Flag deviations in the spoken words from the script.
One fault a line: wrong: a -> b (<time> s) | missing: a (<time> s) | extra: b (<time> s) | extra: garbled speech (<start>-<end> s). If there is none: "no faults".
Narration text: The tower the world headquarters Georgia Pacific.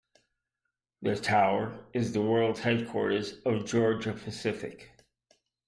extra: is (1.9 s)
extra: of (3.4 s)